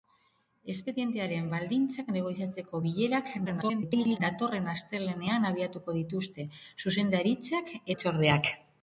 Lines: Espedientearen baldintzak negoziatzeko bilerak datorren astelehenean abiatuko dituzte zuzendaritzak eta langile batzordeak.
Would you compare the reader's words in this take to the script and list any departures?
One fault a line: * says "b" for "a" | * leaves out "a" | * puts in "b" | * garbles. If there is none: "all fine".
* garbles
* leaves out "eta langile"